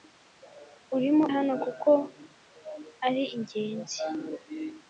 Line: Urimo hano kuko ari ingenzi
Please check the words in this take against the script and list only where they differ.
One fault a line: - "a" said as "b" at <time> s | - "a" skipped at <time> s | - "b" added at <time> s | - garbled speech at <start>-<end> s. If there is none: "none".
none